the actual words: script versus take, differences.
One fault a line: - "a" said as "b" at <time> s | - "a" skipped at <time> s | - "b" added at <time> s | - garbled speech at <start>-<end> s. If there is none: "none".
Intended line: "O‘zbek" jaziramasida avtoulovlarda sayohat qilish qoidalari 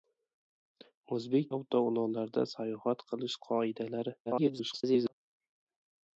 - "jaziramasida" skipped at 1.5 s
- garbled speech at 4.3-5.1 s